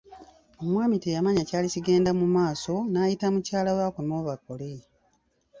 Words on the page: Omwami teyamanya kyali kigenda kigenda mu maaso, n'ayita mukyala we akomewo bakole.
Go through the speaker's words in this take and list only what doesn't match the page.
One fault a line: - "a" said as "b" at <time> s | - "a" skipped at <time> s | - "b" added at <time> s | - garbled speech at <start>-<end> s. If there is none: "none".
- "kigenda" skipped at 2.1 s